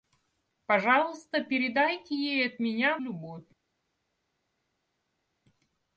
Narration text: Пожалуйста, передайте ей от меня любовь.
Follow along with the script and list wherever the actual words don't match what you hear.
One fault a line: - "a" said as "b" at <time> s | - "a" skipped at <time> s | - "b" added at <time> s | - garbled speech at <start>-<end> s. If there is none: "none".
none